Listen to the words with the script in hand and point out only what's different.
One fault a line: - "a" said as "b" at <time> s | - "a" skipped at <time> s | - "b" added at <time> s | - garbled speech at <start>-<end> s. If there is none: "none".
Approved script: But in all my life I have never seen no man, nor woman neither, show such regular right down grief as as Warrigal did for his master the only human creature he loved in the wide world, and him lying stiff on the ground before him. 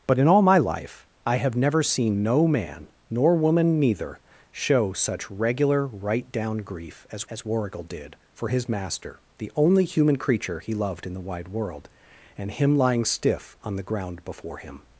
none